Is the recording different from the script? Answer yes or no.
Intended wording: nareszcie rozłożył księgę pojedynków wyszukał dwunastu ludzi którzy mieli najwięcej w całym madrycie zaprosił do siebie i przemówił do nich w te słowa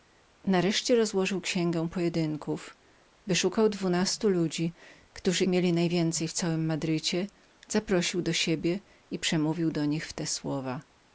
no